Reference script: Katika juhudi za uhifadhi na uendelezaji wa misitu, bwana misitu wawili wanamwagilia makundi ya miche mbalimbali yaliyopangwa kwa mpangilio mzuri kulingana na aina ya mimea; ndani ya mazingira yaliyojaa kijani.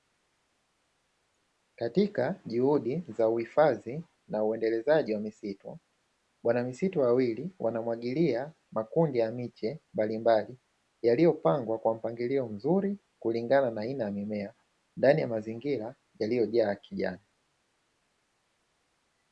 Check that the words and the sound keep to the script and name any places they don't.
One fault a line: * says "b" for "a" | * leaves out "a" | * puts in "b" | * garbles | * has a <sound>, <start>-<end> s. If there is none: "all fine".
all fine